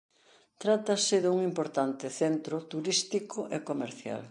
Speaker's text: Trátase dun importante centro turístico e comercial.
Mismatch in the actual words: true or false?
false